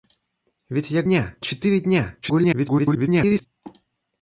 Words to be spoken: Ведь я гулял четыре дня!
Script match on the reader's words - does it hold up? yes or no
no